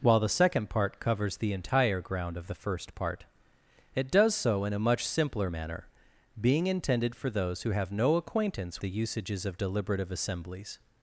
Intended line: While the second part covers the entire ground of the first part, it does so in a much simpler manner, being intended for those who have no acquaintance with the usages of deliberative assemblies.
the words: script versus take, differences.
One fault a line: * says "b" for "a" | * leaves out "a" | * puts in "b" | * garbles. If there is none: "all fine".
* leaves out "with"